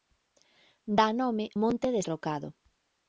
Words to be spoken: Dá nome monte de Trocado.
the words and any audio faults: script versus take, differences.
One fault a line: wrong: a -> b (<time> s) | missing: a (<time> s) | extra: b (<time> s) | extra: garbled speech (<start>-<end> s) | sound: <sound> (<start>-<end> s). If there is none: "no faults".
no faults